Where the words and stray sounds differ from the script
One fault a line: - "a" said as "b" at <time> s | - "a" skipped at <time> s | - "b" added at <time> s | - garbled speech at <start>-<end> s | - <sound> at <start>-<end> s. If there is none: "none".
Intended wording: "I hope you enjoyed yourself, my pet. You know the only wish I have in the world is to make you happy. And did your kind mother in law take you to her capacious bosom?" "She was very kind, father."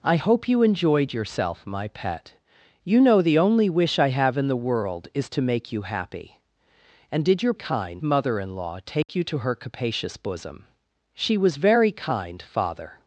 - dropout at 9.0-9.1 s